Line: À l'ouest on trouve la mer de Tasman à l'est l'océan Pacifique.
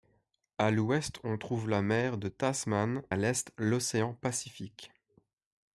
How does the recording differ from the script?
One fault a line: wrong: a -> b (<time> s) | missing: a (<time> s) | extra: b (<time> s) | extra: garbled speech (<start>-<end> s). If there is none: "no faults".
no faults